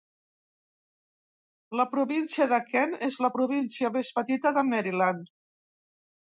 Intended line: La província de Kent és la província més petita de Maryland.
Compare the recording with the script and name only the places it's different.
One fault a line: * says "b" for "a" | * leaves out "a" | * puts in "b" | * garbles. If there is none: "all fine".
all fine